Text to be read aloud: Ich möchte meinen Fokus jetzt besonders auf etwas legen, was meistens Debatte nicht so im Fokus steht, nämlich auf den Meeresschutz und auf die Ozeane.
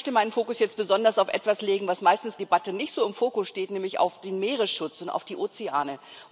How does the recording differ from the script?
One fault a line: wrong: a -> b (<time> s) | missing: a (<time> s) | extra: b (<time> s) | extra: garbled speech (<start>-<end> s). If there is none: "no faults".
no faults